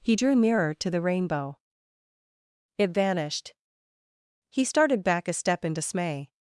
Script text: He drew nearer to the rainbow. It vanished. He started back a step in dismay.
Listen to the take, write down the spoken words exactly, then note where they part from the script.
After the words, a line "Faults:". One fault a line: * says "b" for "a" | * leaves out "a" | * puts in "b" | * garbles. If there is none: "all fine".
He drew nearer to the rainbow. It vanished. He started back a step in dismay.
Faults:
all fine